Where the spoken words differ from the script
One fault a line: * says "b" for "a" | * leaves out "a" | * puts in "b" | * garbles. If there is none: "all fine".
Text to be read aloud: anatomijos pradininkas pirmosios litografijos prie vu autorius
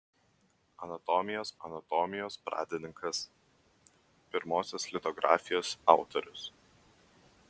* puts in "anatomijos"
* leaves out "prie vu"